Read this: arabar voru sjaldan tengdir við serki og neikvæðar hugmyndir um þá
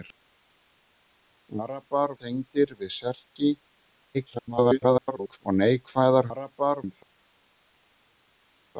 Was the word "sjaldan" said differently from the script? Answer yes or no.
yes